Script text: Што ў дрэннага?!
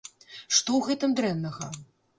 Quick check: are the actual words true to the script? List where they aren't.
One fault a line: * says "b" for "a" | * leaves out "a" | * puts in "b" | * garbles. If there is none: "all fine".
* puts in "гэтым"